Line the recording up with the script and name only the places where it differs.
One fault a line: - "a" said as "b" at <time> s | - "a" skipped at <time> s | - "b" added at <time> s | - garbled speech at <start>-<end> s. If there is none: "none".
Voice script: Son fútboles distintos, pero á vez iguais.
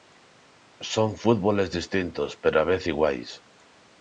none